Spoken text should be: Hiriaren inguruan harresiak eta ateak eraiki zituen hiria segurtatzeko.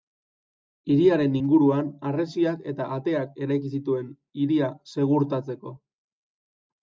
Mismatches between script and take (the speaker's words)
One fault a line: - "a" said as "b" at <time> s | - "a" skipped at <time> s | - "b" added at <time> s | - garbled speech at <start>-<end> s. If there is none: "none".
none